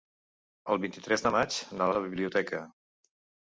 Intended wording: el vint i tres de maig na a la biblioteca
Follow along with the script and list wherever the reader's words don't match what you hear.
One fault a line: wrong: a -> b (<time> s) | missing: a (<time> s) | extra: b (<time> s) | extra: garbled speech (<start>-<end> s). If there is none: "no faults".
no faults